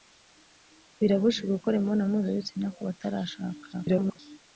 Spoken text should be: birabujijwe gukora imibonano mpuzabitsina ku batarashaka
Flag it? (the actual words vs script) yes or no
yes